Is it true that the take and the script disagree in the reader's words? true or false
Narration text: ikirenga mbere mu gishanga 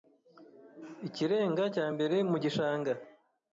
true